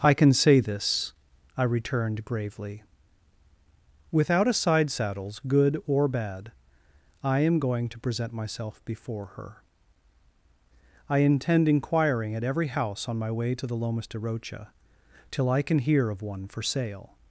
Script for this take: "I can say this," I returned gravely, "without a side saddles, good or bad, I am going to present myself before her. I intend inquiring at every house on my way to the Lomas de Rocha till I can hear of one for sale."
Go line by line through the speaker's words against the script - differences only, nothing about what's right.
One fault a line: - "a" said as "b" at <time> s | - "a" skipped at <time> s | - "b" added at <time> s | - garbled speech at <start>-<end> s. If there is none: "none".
none